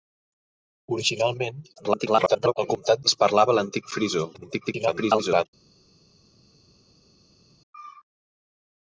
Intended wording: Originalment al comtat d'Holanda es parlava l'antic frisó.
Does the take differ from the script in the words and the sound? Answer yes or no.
yes